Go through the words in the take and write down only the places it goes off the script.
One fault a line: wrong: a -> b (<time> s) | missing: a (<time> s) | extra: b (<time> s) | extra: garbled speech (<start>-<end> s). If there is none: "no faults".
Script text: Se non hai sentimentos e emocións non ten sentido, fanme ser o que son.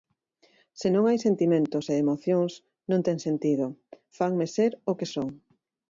no faults